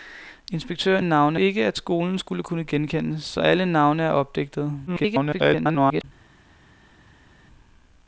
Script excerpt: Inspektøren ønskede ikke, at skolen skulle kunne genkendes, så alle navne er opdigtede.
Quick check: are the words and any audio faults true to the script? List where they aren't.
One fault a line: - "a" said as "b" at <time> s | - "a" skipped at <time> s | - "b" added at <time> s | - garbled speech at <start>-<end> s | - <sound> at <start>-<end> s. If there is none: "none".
- "ønskede" said as "navne" at 1.0 s
- garbled speech at 4.9-6.0 s